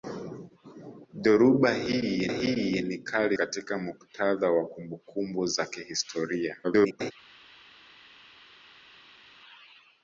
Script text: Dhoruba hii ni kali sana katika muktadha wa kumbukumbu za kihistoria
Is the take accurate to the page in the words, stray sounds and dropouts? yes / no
no